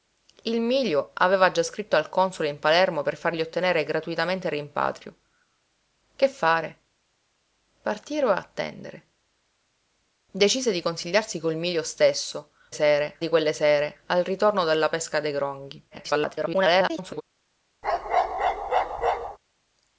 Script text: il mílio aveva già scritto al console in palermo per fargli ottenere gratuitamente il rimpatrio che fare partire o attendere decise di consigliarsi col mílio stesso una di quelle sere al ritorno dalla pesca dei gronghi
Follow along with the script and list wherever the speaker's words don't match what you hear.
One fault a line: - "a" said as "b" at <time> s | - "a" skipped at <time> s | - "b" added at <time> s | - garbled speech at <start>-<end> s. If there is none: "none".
- "una" said as "sere" at 12.7 s
- garbled speech at 15.9-17.2 s